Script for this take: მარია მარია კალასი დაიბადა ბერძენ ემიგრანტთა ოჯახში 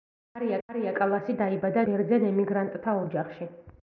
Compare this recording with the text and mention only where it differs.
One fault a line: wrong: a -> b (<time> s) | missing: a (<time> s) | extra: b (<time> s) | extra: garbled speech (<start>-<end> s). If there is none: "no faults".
no faults